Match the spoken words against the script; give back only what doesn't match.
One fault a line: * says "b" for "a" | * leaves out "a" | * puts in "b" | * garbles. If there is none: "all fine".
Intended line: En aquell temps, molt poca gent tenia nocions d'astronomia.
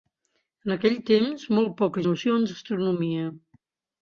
* leaves out "gent tenia"